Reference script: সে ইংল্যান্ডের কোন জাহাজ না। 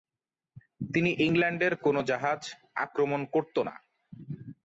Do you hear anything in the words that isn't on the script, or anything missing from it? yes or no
yes